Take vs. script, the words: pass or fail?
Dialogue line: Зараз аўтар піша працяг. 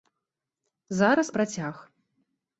fail